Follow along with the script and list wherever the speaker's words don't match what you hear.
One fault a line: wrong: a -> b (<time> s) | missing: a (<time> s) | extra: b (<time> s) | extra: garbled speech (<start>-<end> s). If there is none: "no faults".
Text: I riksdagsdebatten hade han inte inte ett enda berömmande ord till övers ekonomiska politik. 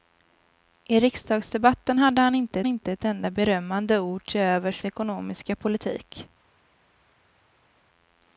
no faults